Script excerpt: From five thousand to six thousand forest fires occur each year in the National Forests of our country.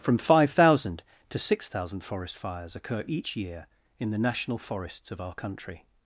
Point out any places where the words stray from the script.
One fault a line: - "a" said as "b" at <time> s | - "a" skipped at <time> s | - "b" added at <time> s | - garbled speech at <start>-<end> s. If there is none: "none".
none